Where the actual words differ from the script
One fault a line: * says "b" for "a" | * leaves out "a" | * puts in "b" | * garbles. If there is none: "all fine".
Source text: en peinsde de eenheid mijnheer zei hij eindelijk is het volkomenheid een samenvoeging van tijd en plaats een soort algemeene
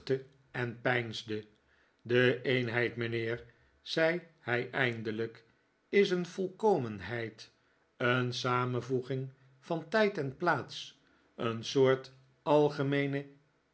* says "een" for "het"